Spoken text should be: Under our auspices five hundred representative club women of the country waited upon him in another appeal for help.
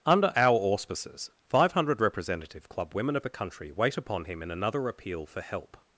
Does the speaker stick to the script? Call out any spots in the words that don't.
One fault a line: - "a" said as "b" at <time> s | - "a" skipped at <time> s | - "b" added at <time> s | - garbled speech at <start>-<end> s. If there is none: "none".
- "waited" said as "wait" at 3.7 s